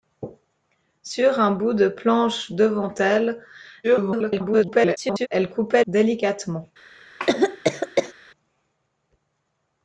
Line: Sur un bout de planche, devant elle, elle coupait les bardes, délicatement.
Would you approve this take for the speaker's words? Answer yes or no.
no